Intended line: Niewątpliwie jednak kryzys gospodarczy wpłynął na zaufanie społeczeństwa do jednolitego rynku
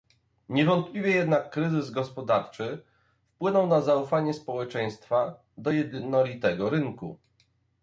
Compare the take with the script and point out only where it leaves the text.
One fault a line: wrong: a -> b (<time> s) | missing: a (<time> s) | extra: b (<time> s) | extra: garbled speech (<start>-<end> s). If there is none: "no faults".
no faults